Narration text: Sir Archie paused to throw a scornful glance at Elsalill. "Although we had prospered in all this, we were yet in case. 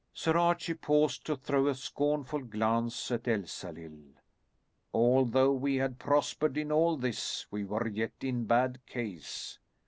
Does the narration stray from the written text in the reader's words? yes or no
yes